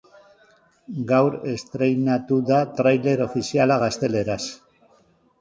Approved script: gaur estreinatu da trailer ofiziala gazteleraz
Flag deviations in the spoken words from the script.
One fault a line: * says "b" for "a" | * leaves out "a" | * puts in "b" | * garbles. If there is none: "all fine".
all fine